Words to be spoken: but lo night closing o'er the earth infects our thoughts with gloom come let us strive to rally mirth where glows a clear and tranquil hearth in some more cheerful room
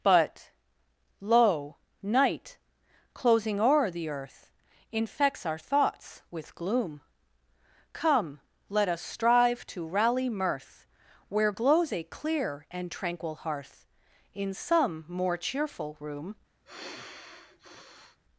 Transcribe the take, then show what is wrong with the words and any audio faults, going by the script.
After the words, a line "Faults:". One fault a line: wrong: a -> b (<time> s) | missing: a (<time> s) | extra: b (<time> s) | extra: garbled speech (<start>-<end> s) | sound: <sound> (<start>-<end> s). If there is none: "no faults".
but lo night closing o'er the earth infects our thoughts with gloom come let us strive to rally mirth where glows a clear and tranquil hearth in some more cheerful room
Faults:
sound: sigh (16.7-18.2 s)